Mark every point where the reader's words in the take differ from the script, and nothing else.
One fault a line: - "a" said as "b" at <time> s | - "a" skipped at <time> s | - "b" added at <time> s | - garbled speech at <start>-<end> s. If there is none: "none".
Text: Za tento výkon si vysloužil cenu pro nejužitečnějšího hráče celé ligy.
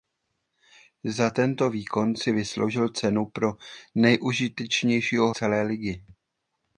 - "hráče" skipped at 5.3 s